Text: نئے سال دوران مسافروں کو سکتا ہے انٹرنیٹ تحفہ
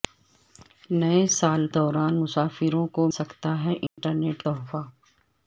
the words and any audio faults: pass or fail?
fail